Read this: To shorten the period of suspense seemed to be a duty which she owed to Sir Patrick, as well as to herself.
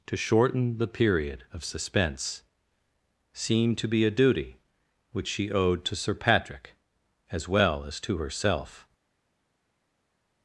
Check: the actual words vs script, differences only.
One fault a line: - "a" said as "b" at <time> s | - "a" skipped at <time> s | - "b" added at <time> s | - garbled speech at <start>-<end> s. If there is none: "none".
none